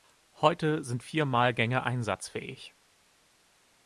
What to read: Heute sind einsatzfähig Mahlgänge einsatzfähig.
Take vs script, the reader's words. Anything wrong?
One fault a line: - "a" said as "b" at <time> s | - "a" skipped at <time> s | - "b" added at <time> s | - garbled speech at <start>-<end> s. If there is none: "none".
- "einsatzfähig" said as "vier" at 1.0 s